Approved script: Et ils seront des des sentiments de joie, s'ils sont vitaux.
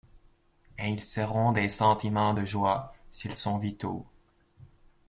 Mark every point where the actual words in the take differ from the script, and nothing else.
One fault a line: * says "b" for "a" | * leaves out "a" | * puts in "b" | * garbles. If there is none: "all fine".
* leaves out "des"